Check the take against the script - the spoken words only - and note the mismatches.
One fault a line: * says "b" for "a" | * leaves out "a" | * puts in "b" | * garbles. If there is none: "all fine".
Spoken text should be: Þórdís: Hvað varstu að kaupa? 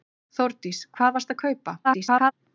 * garbles